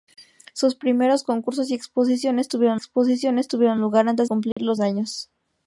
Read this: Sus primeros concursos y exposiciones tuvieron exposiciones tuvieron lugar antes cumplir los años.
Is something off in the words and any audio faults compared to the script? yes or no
yes